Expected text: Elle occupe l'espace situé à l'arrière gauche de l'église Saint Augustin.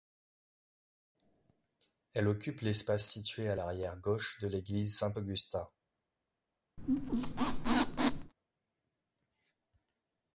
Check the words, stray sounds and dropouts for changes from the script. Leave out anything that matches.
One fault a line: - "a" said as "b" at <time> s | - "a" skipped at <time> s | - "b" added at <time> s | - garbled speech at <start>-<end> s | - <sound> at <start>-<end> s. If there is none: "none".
- squeak at 6.8-8.3 s